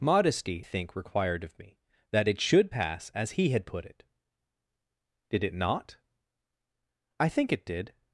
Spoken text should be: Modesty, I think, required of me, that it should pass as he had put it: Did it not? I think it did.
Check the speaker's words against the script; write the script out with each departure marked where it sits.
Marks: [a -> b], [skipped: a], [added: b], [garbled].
Modesty, [skipped: I] think, required of me, that it should pass as he had put it: Did it not? I think it did.